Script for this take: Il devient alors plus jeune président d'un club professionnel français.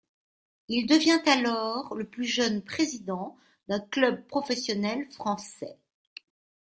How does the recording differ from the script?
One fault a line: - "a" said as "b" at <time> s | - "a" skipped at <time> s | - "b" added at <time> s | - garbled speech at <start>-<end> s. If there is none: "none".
- "le" added at 1.9 s